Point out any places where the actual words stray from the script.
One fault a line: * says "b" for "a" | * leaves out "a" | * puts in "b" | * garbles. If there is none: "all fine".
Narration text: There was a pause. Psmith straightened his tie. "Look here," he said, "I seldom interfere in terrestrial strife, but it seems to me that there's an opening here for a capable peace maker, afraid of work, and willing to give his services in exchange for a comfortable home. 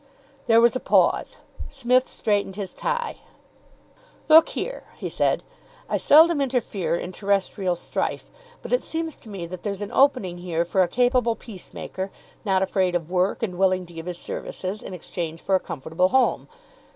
* puts in "not"